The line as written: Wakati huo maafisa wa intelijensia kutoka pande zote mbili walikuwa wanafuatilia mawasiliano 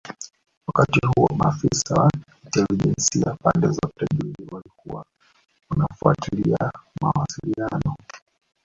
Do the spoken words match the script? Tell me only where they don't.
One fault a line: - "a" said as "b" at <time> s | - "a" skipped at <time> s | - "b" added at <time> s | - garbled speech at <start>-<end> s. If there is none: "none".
- "kutoka" skipped at 3.3 s